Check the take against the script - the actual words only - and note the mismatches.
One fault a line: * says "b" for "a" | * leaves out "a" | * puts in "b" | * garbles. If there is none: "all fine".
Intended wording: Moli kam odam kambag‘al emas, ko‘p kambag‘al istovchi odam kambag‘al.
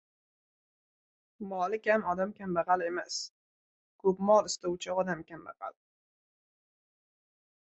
* says "mol" for "kambag‘al"